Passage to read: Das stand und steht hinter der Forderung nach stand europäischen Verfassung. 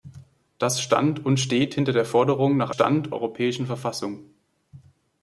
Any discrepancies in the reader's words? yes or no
no